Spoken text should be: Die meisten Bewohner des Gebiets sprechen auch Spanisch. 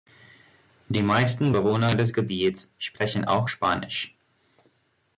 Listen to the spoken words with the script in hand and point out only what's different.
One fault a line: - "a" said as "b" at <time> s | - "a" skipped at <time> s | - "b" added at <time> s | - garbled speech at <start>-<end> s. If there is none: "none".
none